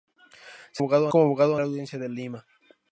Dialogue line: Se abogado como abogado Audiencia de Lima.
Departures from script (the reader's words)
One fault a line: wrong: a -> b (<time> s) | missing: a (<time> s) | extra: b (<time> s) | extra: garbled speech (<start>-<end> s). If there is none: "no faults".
no faults